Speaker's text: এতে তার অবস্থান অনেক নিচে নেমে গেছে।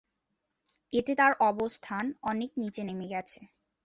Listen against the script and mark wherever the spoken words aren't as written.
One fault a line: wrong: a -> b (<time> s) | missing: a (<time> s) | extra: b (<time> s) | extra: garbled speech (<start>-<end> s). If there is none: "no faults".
no faults